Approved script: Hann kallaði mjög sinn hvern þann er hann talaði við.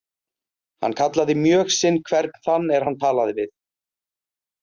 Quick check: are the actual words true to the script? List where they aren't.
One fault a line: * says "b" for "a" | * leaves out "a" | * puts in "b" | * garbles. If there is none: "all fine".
all fine